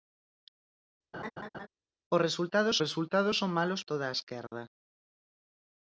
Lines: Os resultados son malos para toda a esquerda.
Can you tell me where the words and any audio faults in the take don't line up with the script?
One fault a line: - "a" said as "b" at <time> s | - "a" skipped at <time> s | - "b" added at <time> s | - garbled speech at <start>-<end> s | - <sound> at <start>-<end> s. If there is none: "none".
- laugh at 1.1-1.7 s
- "resultados" added at 2.8 s
- "para" skipped at 3.8 s
- dropout at 4.5-4.5 s